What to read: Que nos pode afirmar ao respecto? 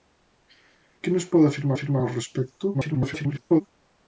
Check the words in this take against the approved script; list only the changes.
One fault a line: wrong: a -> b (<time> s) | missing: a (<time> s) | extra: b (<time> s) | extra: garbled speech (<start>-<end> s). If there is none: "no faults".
extra: afirmar (1.7 s)
extra: garbled speech (2.7-3.6 s)